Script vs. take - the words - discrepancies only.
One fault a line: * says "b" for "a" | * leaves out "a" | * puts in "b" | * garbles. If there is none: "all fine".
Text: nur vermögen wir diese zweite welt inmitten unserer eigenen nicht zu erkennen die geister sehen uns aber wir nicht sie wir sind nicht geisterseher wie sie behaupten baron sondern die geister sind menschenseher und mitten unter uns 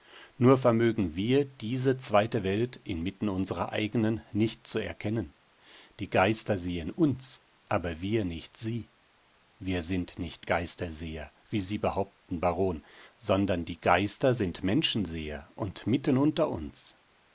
all fine